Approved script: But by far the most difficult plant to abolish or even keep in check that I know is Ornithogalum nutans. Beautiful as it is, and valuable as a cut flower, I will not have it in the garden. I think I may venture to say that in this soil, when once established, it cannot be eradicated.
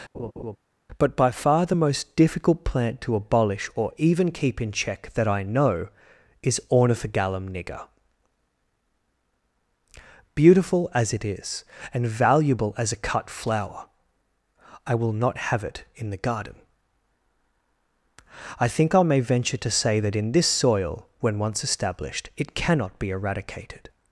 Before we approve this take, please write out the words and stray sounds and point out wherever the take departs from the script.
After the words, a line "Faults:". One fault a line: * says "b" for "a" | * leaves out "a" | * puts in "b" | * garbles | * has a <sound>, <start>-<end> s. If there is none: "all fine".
But by far the most difficult plant to abolish or even keep in check that I know is Ornithogalum nigger. Beautiful as it is, and valuable as a cut flower, I will not have it in the garden. I think I may venture to say that in this soil, when once established, it cannot be eradicated.
Faults:
* has a laugh, 0.1-0.6 s
* says "nigger" for "nutans"